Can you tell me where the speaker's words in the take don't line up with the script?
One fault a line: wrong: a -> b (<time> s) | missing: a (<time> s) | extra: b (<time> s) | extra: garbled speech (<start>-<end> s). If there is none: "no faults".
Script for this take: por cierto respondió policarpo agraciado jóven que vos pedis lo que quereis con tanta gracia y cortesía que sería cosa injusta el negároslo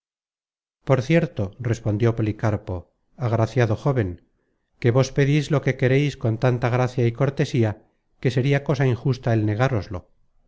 no faults